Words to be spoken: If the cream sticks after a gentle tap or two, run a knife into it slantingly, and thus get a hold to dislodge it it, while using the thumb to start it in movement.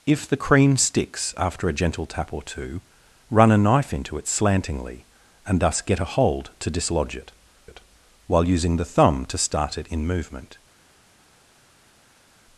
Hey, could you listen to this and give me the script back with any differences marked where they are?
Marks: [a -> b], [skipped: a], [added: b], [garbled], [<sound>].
If the cream sticks after a gentle tap or two, run a knife into it slantingly, and thus get a hold to dislodge it it, while using the thumb to start it in movement.